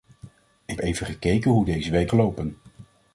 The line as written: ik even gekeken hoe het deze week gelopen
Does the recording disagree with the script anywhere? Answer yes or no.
no